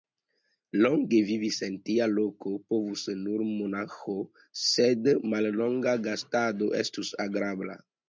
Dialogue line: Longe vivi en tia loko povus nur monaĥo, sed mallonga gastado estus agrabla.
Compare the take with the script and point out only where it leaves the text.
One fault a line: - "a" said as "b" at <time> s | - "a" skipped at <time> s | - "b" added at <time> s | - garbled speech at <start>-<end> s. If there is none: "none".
none